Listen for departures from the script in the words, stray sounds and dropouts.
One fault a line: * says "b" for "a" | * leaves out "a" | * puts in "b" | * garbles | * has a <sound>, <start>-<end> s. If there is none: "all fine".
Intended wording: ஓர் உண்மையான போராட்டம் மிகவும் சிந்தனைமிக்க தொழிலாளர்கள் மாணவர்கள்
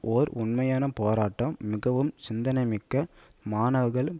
* leaves out "தொழிலாளர்கள்"